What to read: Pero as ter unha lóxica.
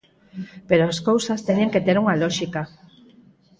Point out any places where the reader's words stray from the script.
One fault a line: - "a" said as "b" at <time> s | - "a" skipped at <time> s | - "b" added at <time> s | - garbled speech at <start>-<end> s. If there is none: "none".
- "cousas teñen que" added at 1.1 s